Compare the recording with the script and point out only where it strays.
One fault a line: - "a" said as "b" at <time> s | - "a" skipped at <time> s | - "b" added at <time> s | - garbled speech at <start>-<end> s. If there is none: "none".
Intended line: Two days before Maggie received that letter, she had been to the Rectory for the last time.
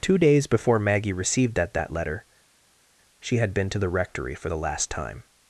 - "that" added at 1.8 s